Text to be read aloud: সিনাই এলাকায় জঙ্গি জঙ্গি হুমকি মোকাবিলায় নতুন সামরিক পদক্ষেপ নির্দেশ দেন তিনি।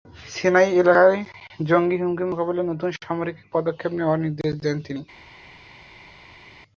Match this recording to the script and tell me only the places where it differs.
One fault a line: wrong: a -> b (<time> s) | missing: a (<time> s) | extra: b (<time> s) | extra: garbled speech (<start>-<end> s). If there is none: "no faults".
missing: জঙ্গি (2.0 s)
extra: নেওয়ার (4.0 s)